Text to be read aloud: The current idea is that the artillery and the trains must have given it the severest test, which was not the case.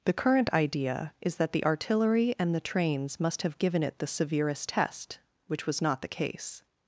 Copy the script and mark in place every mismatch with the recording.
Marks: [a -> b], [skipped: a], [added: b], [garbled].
The current idea is that the artillery and the trains must have given it the severest test, which was not the case.